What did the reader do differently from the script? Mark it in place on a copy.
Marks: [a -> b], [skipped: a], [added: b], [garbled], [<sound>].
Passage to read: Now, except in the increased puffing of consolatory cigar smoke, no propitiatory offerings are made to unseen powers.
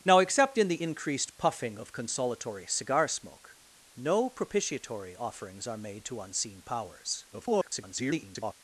Now, except in the increased puffing of consolatory cigar smoke, no propitiatory offerings are made to unseen powers. [garbled]